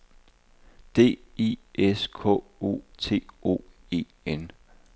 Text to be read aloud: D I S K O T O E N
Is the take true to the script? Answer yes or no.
yes